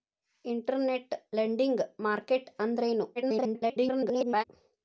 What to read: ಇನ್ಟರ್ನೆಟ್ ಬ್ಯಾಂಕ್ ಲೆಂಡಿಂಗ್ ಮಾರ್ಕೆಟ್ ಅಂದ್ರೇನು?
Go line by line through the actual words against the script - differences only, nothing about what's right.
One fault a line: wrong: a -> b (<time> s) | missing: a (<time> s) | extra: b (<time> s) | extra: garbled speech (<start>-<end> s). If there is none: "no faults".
missing: ಬ್ಯಾಂಕ್ (1.1 s)
extra: garbled speech (3.2-4.4 s)